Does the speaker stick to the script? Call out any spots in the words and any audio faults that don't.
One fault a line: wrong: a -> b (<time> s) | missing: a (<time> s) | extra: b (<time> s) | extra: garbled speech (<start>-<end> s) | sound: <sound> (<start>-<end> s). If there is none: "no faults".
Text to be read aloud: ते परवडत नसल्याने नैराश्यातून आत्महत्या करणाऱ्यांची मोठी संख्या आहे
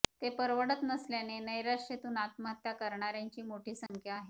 sound: dropout (3.9-3.9 s)